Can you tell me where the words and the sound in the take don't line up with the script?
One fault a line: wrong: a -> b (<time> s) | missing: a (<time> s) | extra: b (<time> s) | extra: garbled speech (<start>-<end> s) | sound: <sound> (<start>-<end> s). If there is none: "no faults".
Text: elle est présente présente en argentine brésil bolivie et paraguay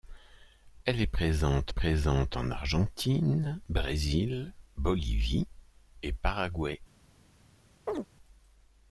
sound: chirp (7.9-8.1 s)